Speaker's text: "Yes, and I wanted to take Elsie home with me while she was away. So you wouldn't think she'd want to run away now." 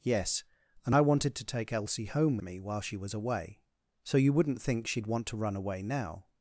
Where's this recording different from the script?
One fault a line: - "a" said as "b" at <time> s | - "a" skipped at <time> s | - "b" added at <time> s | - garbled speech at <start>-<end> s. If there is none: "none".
- "with" skipped at 2.4 s